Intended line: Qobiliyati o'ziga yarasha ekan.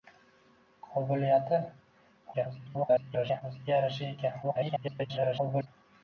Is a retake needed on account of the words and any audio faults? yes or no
yes